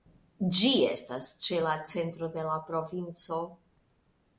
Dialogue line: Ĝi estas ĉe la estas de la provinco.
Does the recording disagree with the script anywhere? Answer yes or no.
yes